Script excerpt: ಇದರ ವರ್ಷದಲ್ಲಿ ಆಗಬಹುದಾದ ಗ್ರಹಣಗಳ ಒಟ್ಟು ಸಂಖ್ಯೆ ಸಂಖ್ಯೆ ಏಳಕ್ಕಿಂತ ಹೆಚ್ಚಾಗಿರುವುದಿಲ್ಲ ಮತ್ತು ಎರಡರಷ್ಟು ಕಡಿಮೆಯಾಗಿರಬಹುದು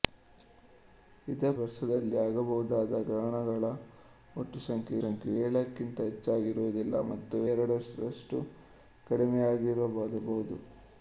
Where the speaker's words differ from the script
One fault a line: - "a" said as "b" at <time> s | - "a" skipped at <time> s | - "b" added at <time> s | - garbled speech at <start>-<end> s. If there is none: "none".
none